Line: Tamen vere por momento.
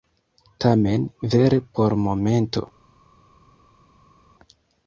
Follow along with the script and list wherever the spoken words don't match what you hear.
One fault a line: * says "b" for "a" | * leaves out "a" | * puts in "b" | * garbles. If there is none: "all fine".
all fine